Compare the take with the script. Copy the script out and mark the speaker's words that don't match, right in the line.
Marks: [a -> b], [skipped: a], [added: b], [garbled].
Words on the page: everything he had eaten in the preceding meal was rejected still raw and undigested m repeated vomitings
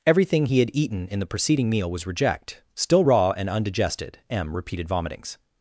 everything he had eaten in the preceding meal was [rejected -> reject] still raw and undigested m repeated vomitings